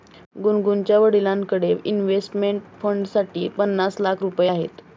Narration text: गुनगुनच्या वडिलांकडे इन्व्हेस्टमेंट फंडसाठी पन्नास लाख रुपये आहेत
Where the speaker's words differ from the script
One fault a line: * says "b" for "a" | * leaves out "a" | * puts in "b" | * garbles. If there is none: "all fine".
all fine